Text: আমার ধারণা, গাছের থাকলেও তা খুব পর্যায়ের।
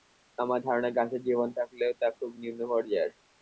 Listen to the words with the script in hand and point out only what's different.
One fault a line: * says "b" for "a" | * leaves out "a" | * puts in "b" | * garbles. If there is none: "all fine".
* puts in "জীবন"
* puts in "নিম্ন"